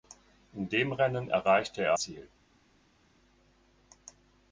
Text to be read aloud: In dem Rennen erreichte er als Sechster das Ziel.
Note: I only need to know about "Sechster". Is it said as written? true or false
false